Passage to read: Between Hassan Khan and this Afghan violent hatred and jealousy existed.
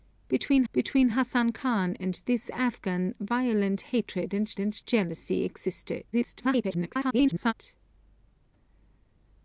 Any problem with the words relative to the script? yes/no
yes